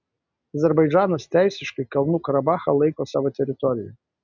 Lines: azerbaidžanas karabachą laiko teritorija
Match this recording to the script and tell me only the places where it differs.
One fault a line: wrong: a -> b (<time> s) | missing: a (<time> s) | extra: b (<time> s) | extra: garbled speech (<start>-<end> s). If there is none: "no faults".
extra: teisiškai kalnų (1.4 s)
extra: savo (3.1 s)